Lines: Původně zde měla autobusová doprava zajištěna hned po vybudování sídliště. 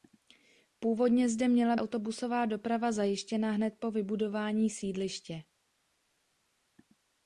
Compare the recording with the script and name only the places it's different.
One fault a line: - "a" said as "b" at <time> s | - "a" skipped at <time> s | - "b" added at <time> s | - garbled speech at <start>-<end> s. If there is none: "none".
none